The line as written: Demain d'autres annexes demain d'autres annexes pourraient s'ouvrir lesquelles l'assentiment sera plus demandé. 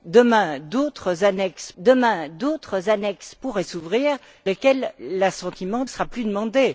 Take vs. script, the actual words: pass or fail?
pass